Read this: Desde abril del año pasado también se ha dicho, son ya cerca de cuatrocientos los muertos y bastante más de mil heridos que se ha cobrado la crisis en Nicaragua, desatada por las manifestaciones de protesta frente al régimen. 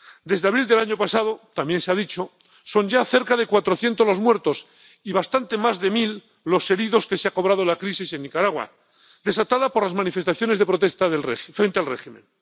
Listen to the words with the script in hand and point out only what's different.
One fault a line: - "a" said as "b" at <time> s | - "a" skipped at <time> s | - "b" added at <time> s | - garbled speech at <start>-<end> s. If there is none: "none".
- "los" added at 6.4 s